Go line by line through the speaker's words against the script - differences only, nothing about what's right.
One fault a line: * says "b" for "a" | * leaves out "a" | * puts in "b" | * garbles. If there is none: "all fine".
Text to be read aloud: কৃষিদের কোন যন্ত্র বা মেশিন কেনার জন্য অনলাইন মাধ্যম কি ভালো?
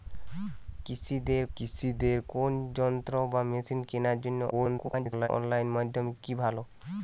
* puts in "কৃষিদের"
* garbles